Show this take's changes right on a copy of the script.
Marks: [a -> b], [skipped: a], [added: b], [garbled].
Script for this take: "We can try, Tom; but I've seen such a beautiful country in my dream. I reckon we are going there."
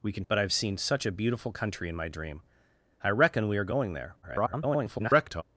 "We can [skipped: try, Tom;] but I've seen such a beautiful country in my dream. I reckon we are going there." [garbled]